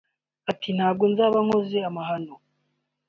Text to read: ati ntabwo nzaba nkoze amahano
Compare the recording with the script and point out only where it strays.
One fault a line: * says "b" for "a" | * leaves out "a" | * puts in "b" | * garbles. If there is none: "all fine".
all fine